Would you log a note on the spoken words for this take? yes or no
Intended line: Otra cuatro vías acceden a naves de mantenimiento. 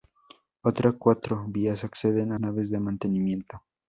no